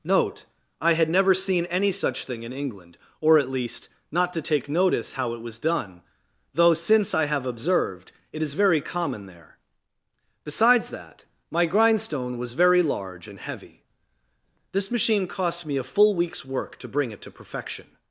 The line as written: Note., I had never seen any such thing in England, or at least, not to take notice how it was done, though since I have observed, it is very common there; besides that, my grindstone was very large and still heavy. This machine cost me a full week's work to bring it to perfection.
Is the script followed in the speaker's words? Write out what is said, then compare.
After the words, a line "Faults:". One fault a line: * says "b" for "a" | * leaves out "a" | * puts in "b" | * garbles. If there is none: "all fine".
Note., I had never seen any such thing in England, or at least, not to take notice how it was done, though since I have observed, it is very common there; besides that, my grindstone was very large and heavy. This machine cost me a full week's work to bring it to perfection.
Faults:
* leaves out "still"